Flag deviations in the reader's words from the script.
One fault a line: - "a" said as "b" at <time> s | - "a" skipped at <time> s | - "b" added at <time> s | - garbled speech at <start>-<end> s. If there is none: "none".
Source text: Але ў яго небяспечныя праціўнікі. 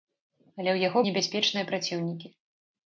none